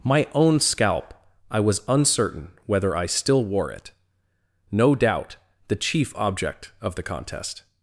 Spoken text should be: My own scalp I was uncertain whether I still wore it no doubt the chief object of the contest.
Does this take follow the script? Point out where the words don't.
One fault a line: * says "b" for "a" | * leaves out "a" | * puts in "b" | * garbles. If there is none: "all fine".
all fine